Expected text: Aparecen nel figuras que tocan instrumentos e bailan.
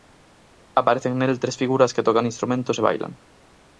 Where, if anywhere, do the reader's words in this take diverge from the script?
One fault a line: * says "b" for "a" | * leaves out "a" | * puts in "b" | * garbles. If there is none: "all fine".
* puts in "tres"